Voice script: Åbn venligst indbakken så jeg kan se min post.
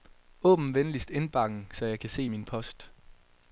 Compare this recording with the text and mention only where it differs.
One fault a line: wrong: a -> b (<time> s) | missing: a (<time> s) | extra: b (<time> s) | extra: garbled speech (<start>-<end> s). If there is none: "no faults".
no faults